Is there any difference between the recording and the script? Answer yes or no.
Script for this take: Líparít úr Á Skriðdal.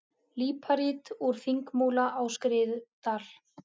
yes